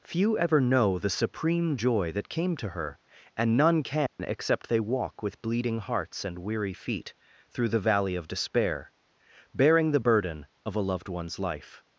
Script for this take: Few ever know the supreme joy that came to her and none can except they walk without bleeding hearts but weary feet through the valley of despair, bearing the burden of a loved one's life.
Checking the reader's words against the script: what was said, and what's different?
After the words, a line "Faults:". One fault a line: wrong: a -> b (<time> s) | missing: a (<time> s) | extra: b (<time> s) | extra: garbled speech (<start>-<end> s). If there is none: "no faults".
Few ever know the supreme joy that came to her and none can except they walk with bleeding hearts and weary feet through the valley of despair, bearing the burden of a loved one's life.
Faults:
wrong: without -> with (5.2 s)
wrong: but -> and (6.2 s)